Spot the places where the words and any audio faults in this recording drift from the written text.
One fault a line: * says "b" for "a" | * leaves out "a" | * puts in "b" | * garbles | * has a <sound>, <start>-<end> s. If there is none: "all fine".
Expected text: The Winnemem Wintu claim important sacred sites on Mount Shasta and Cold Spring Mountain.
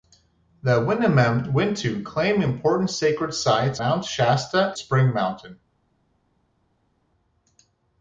* leaves out "on"
* leaves out "and Cold"